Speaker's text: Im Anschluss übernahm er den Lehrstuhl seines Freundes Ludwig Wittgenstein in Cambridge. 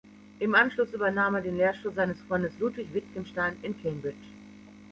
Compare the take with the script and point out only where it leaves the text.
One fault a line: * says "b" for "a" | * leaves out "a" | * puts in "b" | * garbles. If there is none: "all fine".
all fine